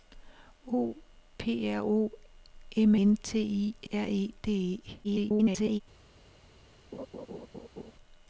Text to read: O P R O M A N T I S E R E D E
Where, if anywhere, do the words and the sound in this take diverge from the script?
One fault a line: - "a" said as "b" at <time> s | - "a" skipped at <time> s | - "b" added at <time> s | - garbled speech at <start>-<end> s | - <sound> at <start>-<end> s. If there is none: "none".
- "A" skipped at 3.0 s
- "S E" skipped at 3.9 s
- garbled speech at 5.0-5.8 s
- laugh at 6.9-7.9 s